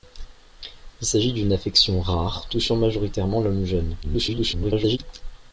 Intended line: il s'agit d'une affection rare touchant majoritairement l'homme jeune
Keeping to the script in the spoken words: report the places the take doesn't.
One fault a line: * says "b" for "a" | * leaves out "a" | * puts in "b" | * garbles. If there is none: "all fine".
* garbles